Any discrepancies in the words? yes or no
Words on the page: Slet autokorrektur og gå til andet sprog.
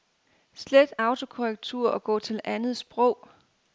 no